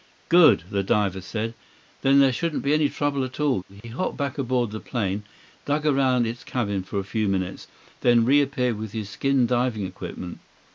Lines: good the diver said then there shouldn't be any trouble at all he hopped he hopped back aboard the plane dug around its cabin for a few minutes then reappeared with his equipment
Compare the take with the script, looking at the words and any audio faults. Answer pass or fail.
fail